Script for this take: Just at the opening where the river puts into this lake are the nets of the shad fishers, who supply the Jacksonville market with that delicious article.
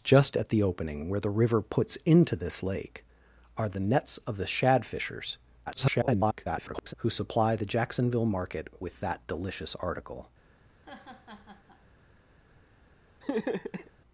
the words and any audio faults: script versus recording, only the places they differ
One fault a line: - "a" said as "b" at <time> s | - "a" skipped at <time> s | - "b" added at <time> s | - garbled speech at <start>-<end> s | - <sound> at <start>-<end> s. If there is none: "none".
- garbled speech at 5.7-6.9 s
- laugh at 10.7-11.8 s
- laugh at 13.2-13.9 s